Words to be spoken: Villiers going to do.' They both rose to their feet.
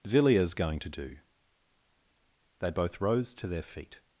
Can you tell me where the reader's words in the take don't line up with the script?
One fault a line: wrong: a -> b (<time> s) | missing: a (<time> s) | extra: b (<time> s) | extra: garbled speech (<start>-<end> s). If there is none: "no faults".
no faults